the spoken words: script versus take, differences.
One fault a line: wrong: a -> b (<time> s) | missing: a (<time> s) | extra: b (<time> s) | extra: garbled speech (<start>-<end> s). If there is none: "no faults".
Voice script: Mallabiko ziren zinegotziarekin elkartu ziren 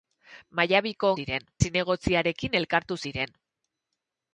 no faults